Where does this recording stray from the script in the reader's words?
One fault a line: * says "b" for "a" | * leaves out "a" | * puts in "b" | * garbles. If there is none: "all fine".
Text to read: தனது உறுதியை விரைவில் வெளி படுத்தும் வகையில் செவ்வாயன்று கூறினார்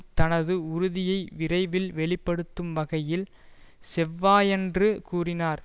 all fine